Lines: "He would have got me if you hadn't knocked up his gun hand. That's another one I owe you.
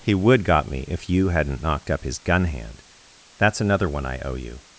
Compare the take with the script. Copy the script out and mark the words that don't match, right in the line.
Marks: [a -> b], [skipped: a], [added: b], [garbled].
"He would [skipped: have] got me if you hadn't knocked up his gun hand. That's another one I owe you.